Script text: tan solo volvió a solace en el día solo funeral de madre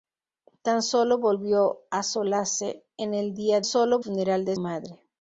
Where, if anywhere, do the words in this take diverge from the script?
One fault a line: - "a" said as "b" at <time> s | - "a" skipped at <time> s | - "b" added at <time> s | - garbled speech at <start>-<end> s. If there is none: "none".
none